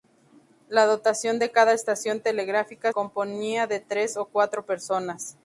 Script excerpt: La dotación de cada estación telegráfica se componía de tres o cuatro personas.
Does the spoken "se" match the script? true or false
false